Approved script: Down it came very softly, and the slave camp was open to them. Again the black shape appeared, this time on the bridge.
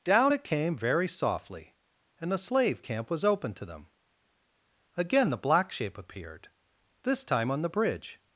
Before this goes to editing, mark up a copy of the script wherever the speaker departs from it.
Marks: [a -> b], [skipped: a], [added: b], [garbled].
Down it came very softly, and the slave camp was open to them. Again the black shape appeared, this time on the bridge.